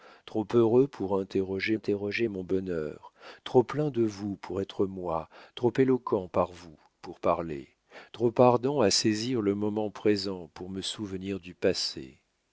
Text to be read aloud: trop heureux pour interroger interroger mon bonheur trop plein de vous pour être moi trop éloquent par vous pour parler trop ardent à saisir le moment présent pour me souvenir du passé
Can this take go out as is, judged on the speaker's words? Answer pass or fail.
pass